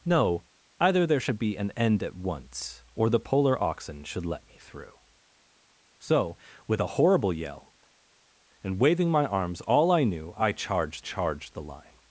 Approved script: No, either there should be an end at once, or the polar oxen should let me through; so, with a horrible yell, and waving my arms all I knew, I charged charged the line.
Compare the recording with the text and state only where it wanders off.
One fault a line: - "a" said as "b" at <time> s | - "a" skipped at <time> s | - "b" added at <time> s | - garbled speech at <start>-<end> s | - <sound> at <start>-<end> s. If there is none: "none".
none